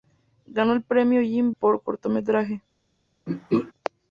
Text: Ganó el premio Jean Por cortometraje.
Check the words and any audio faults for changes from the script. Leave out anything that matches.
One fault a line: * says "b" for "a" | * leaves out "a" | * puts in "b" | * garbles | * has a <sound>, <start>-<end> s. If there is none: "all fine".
* has a throat clearing, 3.3-3.7 s